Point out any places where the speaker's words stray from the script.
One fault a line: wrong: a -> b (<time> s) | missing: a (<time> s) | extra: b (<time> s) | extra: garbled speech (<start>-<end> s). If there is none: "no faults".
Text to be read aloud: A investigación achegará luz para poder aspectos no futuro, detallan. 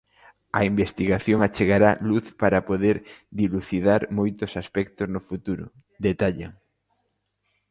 extra: dilucidar moitos (3.4 s)